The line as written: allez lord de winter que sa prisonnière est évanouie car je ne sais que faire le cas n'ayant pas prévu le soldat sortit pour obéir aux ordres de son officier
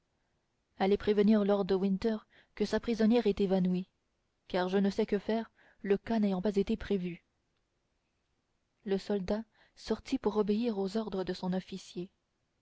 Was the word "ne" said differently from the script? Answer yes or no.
no